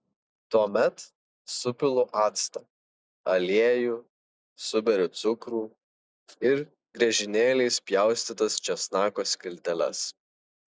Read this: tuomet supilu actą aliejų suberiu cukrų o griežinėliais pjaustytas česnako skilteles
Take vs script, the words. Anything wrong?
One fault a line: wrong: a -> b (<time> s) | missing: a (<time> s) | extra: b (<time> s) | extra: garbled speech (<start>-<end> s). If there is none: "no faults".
wrong: o -> ir (6.5 s)